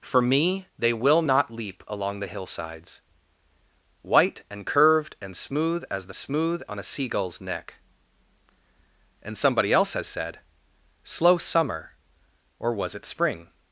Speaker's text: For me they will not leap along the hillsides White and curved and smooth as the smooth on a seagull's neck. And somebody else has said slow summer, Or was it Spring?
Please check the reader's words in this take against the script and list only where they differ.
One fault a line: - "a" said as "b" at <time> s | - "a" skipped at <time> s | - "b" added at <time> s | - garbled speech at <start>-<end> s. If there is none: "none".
none